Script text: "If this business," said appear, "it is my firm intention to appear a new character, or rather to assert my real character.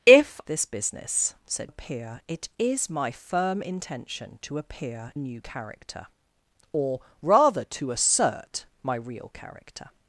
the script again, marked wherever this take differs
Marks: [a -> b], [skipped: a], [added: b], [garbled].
"If this business," said appear, "it is my firm intention to appear a new character, or rather to assert my real character.